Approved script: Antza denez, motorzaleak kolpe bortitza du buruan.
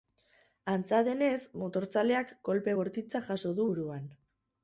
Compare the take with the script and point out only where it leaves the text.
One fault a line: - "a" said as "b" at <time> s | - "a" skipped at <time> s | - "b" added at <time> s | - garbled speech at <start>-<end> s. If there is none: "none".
- "jaso" added at 3.3 s